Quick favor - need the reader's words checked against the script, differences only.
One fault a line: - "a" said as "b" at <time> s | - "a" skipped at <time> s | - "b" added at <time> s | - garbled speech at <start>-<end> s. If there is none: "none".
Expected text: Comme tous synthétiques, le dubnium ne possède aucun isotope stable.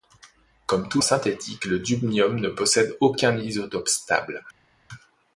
none